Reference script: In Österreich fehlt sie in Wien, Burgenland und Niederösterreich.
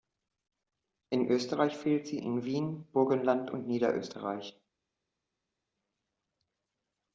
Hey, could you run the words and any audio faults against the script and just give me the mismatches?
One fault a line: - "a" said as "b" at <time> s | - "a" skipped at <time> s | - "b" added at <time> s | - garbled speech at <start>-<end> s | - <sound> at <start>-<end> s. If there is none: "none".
none